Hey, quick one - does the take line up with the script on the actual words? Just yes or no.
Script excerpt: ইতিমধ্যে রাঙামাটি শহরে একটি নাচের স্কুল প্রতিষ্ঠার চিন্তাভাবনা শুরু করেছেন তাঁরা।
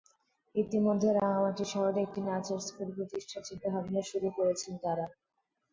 yes